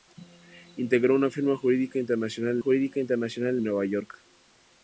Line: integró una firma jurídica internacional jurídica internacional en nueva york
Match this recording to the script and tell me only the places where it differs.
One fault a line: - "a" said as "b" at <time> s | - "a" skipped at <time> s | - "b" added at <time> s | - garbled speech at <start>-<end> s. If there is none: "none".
none